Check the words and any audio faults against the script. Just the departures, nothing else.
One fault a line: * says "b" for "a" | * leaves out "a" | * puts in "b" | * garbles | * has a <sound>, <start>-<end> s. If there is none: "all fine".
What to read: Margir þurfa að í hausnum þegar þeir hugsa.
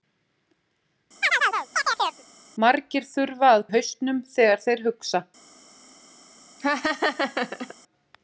* has a chirp, 1.2-2.2 s
* has a laugh, 6.6-7.7 s